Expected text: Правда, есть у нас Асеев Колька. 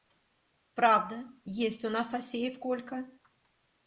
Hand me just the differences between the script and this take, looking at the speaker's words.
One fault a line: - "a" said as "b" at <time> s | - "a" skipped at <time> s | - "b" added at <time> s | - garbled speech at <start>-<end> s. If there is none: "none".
none